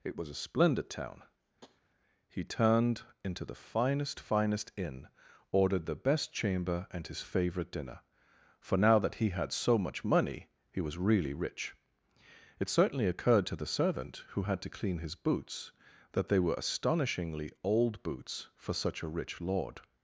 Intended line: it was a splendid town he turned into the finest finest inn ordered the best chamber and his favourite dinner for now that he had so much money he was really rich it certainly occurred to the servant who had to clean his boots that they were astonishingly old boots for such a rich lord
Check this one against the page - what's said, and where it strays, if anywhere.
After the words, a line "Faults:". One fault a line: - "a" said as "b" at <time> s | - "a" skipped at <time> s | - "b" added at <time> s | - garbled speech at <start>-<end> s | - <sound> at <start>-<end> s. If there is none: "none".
it was a splendid town he turned into the finest finest inn ordered the best chamber and his favourite dinner for now that he had so much money he was really rich it certainly occurred to the servant who had to clean his boots that they were astonishingly old boots for such a rich lord
Faults:
- tap at 1.6-1.8 s